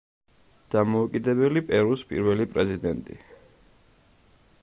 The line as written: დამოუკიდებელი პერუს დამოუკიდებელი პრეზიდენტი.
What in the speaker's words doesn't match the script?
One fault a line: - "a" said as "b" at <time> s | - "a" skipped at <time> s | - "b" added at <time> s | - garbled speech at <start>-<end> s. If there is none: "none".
- "დამოუკიდებელი" said as "პირველი" at 2.1 s